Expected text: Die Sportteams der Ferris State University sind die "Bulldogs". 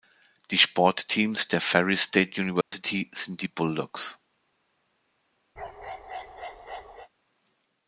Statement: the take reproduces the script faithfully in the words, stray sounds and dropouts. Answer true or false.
false